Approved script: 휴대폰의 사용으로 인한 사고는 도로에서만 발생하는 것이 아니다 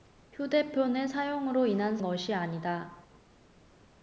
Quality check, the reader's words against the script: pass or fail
fail